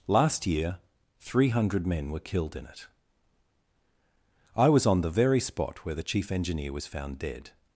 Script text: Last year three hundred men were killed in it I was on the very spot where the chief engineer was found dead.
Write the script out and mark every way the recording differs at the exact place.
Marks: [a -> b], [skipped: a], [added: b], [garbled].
Last year three hundred men were killed in it I was on the very spot where the chief engineer was found dead.